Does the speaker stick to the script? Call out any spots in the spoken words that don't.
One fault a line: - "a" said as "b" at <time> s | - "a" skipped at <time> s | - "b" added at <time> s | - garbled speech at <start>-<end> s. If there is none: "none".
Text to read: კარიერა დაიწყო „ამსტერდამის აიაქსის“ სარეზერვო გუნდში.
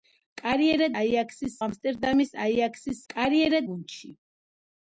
- "დაიწყო" said as "აიაქსის" at 1.0 s
- "სარეზერვო" said as "კარიერა" at 3.1 s